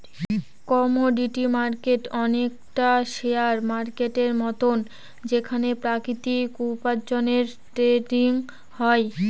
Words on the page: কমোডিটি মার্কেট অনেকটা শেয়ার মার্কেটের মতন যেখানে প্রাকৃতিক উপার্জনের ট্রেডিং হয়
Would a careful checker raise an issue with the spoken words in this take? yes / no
no